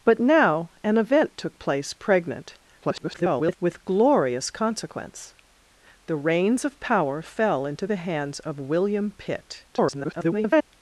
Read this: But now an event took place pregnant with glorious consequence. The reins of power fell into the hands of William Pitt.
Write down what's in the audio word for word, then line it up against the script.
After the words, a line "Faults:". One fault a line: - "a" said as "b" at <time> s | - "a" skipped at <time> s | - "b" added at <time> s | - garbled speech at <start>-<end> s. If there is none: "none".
But now an event took place pregnant [garbled] with glorious consequence. The reins of power fell into the hands of William Pitt. [garbled]
Faults:
- garbled speech at 2.8-3.6 s
- garbled speech at 9.7-10.7 s